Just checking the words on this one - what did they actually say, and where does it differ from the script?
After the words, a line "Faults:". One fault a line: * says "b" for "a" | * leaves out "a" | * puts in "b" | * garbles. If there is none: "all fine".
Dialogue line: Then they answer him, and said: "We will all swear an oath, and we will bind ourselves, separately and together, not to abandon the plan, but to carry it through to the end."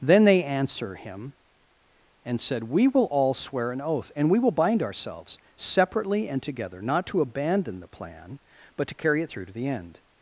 Then they answer him, and said: "We will all swear an oath, and we will bind ourselves, separately and together, not to abandon the plan, but to carry it through to the end."
Faults:
all fine